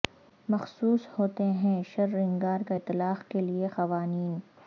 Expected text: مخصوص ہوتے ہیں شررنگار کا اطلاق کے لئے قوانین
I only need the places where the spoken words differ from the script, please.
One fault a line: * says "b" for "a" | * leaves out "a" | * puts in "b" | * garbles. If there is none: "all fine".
all fine